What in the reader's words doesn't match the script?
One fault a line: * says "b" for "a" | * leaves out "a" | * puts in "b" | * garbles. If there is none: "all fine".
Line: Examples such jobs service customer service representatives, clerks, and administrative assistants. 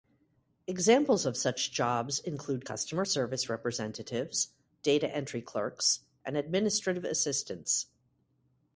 * puts in "of"
* says "include" for "service"
* puts in "data entry"